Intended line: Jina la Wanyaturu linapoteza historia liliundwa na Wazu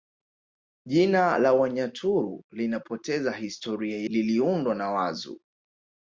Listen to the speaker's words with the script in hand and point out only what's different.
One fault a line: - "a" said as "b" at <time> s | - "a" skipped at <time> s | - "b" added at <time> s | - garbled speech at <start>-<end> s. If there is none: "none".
none